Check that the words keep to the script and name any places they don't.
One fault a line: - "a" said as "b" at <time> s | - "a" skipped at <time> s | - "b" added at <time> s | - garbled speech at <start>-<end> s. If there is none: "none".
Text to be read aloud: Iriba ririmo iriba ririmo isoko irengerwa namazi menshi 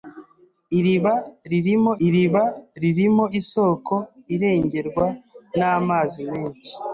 none